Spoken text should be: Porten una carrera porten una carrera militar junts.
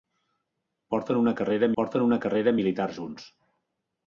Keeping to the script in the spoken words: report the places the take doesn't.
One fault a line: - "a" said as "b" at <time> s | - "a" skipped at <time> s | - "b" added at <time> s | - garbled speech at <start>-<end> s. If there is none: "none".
none